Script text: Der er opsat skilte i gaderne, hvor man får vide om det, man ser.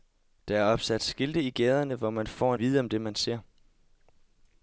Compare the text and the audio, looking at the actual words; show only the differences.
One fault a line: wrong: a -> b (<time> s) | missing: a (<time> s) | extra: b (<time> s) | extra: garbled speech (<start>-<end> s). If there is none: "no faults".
no faults